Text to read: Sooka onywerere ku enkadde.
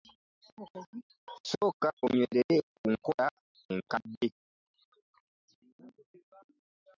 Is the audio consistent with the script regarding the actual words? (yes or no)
no